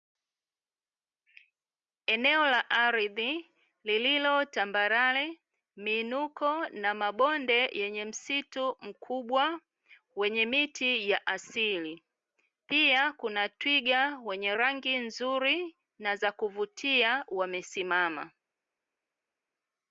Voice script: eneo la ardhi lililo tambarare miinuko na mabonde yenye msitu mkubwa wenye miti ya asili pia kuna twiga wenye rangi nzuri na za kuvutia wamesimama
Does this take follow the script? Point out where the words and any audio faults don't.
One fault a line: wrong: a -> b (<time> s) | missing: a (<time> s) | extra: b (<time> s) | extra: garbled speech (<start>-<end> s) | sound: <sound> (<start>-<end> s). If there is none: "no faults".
no faults